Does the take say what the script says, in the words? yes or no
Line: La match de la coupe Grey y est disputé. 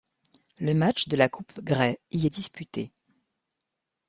no